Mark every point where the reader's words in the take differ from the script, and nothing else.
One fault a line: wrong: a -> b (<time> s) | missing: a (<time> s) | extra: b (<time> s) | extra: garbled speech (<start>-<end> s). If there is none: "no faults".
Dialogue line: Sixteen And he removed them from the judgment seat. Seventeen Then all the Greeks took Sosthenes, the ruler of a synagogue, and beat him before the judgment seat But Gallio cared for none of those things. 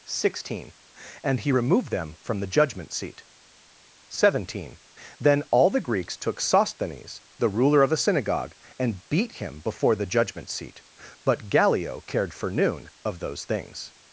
wrong: none -> noon (12.5 s)